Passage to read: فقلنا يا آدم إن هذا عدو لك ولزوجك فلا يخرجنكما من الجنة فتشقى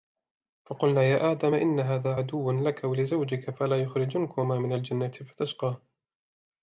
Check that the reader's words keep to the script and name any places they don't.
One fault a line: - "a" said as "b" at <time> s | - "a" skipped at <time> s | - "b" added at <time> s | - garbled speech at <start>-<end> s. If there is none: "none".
none